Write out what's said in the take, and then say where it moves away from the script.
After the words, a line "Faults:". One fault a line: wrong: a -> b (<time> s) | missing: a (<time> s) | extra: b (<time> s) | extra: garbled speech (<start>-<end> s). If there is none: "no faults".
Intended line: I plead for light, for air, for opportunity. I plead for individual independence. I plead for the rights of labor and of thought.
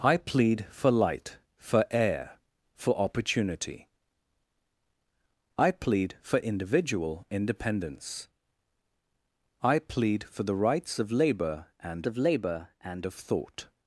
I plead for light, for air, for opportunity. I plead for individual independence. I plead for the rights of labor and of labor and of thought.
Faults:
extra: labor and of (12.2 s)